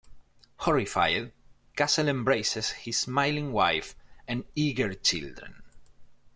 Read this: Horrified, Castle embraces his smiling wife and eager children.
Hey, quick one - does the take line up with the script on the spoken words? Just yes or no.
yes